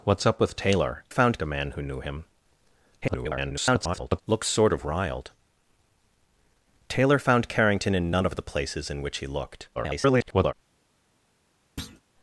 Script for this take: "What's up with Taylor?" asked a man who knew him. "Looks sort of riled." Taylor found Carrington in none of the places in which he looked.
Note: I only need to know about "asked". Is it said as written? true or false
false